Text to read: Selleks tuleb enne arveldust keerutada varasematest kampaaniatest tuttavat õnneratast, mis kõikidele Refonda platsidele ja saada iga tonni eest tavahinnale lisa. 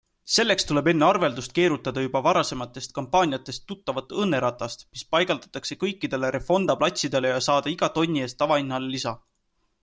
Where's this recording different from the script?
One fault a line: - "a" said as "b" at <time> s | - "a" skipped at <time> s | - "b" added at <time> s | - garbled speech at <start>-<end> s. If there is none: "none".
- "juba" added at 2.0 s
- "paigaldatakse" added at 5.2 s